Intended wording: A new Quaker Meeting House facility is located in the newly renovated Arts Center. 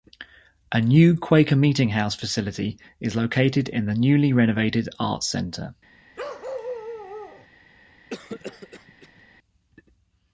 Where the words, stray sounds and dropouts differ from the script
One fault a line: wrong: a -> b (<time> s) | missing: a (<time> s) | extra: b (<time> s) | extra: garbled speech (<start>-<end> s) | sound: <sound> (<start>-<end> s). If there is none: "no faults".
sound: bark (6.2-7.5 s)
sound: cough (8.1-9.2 s)